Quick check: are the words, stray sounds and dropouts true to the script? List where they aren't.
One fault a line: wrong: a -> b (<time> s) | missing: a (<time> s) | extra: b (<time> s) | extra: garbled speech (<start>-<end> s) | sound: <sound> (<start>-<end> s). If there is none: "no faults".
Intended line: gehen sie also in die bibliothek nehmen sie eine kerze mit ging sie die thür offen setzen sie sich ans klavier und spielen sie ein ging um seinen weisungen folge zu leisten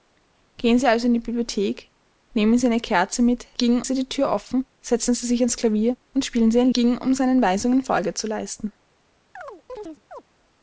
sound: chirp (9.4-10.2 s)